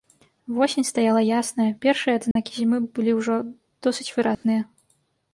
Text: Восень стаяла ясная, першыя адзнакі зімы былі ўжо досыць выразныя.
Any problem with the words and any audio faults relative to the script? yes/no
yes